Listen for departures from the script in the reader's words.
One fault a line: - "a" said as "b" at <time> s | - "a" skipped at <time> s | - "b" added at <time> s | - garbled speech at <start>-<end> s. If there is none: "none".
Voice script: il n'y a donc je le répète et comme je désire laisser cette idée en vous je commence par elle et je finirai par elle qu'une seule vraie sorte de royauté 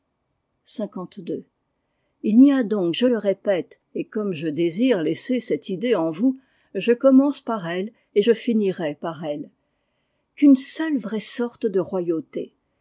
none